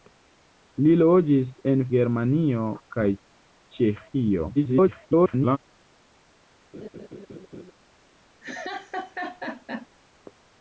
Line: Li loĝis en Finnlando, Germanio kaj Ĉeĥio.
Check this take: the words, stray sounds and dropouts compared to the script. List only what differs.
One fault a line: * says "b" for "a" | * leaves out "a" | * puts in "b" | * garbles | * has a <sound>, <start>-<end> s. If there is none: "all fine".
* leaves out "Finnlando"
* garbles
* has a laugh, 6.7-7.7 s
* has a laugh, 8.4-9.9 s